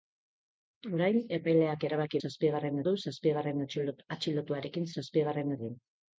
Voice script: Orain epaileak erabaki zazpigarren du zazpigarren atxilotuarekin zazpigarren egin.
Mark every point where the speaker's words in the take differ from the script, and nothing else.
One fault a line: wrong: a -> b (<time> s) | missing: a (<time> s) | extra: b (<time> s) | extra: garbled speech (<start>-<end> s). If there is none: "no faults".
no faults